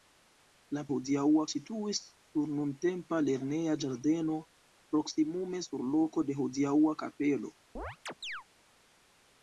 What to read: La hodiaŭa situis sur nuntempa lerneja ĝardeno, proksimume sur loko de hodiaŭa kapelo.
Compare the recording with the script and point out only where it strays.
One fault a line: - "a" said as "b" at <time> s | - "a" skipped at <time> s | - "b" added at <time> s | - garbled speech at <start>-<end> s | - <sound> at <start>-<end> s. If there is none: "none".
- chirp at 7.7-8.4 s